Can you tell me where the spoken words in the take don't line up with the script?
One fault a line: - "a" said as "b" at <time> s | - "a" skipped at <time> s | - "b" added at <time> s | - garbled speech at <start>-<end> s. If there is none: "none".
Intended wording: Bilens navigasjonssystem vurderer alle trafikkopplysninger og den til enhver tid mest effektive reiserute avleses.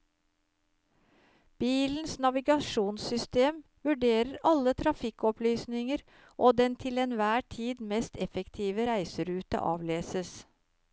none